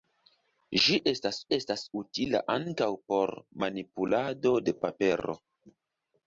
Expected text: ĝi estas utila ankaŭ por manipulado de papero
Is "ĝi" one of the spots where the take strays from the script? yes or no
no